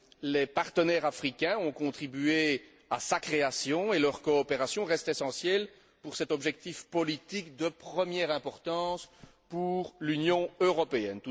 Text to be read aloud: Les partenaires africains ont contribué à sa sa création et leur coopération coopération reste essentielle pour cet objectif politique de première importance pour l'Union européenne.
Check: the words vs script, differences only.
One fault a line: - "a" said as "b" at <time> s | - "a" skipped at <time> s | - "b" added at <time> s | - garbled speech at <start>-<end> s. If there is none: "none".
- "sa" skipped at 3.2 s
- "coopération" skipped at 4.8 s